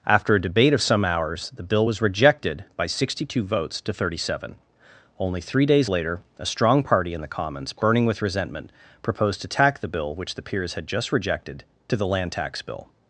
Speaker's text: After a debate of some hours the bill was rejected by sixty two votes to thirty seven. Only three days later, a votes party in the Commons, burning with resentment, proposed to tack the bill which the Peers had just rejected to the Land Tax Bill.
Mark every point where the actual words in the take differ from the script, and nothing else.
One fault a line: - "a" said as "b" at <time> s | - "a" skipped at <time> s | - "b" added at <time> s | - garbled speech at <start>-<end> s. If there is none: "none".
- "votes" said as "strong" at 6.4 s